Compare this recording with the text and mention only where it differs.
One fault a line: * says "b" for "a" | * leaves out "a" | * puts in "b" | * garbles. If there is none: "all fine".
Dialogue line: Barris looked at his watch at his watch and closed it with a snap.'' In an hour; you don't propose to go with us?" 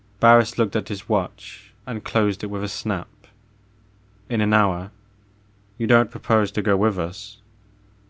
* leaves out "at his watch"